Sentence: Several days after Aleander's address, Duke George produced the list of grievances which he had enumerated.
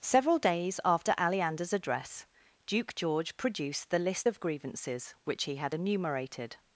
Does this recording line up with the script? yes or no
yes